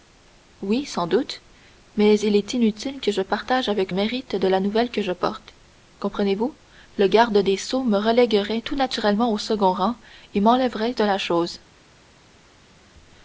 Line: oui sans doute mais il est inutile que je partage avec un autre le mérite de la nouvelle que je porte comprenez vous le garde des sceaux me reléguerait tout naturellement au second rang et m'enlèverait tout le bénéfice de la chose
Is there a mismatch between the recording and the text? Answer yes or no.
yes